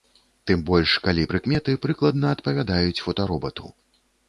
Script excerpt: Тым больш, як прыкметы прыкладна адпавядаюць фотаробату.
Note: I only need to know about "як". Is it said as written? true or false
false